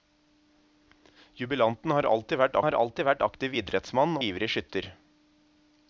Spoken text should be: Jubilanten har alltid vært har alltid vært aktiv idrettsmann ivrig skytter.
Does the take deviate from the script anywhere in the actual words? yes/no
no